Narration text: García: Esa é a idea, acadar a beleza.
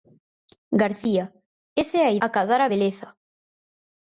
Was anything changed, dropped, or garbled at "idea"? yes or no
yes